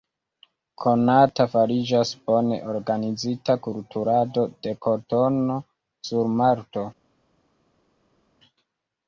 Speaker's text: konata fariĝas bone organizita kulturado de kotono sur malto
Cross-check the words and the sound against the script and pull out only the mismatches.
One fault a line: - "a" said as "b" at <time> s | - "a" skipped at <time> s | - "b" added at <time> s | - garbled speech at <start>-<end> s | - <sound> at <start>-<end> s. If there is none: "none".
none